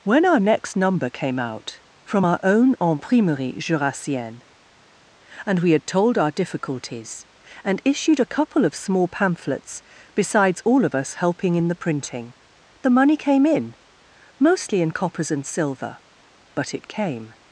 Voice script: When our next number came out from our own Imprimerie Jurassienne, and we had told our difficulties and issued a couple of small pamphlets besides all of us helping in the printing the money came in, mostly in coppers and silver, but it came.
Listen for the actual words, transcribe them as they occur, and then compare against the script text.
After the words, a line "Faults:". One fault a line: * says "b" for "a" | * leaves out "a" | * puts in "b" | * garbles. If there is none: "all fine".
When our next number came out from our own Imprimerie Jurassienne, and we had told our difficulties and issued a couple of small pamphlets besides all of us helping in the printing the money came in, mostly in coppers and silver, but it came.
Faults:
all fine